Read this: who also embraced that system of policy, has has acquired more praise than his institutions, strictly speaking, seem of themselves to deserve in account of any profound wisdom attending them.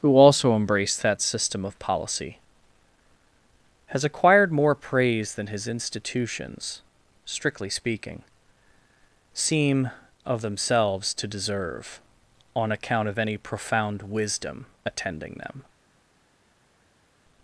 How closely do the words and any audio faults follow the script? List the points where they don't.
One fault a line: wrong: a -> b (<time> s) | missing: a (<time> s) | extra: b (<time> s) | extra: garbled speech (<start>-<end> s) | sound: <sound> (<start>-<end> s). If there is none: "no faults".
missing: has (4.0 s)
wrong: in -> on (12.6 s)